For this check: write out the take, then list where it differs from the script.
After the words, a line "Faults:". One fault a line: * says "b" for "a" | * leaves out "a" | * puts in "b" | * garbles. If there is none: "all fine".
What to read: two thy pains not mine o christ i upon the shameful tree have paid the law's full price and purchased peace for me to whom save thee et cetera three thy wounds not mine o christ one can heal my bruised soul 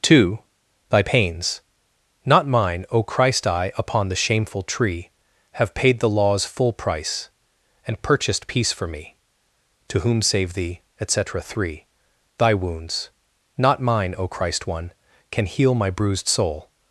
two thy pains not mine o christ i upon the shameful tree have paid the law's full price and purchased peace for me to whom save thee et cetera three thy wounds not mine o christ one can heal my bruised soul
Faults:
all fine